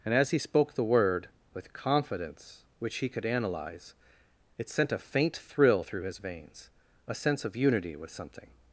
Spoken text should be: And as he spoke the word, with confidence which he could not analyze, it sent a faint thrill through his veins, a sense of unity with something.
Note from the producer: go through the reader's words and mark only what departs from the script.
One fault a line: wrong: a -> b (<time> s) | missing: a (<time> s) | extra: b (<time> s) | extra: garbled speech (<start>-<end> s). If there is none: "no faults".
missing: not (3.2 s)